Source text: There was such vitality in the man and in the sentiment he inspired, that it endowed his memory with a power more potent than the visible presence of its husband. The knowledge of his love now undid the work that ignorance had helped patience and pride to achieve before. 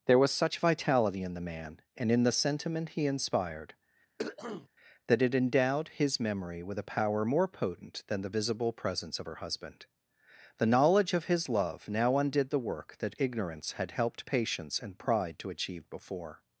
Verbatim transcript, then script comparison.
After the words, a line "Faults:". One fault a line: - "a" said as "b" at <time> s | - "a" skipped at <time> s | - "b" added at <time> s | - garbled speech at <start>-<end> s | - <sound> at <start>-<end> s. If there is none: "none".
There was such vitality in the man and in the sentiment he inspired, that it endowed his memory with a power more potent than the visible presence of her husband. The knowledge of his love now undid the work that ignorance had helped patience and pride to achieve before.
Faults:
- throat clearing at 4.2-4.7 s
- "its" said as "her" at 9.2 s